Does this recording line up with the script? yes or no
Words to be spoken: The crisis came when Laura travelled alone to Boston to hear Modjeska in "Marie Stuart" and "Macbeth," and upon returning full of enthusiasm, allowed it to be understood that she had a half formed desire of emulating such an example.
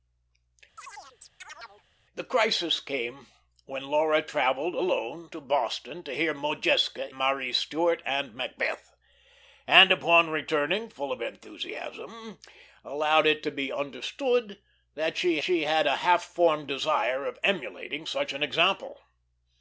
no